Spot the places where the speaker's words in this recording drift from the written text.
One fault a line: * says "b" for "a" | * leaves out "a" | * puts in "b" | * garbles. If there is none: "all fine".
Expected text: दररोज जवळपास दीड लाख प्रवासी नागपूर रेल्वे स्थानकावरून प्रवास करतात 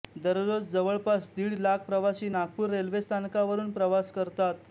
all fine